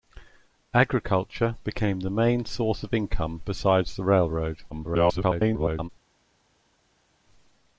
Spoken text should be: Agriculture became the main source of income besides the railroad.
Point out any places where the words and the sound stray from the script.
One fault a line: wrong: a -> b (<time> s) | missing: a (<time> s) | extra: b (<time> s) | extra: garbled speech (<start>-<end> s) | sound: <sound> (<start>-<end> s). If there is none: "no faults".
extra: garbled speech (4.7-5.9 s)